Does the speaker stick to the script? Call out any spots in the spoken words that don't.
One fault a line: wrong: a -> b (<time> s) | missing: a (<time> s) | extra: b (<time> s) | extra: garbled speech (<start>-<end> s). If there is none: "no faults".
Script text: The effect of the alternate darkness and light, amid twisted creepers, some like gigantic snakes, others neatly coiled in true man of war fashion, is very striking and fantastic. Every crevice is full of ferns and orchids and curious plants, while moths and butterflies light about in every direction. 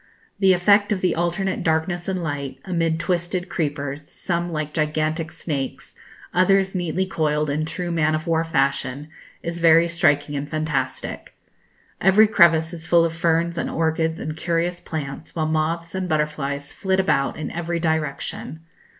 wrong: light -> flit (16.7 s)